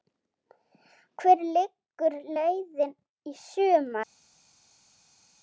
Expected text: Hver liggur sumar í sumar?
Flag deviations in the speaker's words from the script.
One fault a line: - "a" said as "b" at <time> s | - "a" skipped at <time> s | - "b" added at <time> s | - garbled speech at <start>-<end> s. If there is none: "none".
- "sumar" said as "leiðin" at 2.4 s